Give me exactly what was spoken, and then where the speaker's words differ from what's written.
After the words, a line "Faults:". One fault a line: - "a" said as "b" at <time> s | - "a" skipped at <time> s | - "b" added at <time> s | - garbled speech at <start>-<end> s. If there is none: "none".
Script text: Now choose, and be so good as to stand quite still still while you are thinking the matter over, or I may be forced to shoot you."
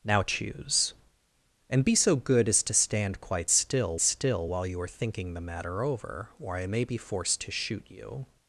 Now choose, and be so good as to stand quite still still while you are thinking the matter over, or I may be forced to shoot you."
Faults:
none